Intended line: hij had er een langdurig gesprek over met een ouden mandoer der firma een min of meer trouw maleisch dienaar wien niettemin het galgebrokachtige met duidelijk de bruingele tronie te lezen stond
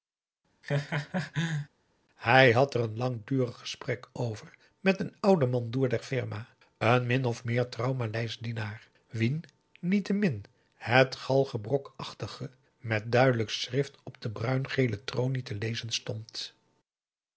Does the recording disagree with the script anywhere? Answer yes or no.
yes